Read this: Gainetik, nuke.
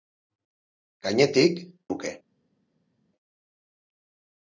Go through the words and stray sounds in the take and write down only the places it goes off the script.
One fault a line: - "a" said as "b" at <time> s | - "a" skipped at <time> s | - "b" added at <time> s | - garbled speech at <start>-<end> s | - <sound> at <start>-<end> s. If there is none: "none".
none